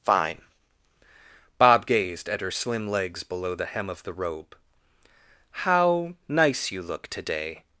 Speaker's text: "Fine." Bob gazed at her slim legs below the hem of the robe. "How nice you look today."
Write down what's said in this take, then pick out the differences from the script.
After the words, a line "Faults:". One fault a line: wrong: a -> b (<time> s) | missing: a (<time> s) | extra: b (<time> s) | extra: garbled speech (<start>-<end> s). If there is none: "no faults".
"Fine." Bob gazed at her slim legs below the hem of the robe. "How nice you look today."
Faults:
no faults